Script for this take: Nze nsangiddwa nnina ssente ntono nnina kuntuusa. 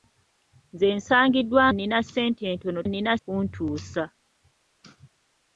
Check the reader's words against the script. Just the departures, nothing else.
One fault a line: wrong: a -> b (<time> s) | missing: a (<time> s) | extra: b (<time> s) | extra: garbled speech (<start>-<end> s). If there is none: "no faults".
no faults